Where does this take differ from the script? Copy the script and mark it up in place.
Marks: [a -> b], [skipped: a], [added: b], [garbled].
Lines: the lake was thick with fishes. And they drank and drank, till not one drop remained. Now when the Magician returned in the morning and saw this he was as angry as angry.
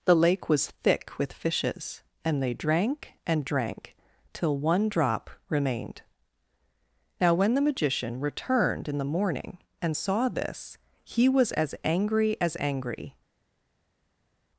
the lake was thick with fishes. And they drank and drank, till [skipped: not] one drop remained. Now when the Magician returned in the morning and saw this he was as angry as angry.